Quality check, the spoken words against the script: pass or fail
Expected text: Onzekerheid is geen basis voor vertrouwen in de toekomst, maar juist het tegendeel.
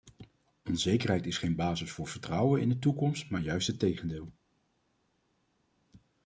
pass